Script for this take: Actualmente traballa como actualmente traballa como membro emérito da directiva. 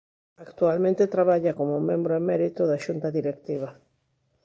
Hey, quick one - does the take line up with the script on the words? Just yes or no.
no